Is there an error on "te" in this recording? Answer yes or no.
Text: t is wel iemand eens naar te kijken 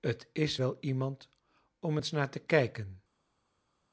no